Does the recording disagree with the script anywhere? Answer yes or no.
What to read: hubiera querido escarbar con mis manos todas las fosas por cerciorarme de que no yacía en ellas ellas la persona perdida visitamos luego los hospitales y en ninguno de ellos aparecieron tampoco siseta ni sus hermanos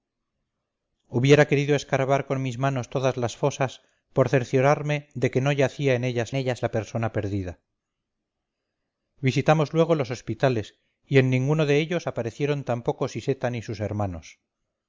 no